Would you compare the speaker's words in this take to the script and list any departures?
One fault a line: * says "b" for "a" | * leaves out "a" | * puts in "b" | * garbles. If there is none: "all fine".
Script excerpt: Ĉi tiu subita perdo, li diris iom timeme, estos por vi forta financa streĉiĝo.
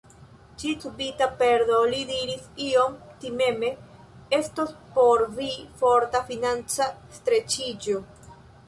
* leaves out "tiu"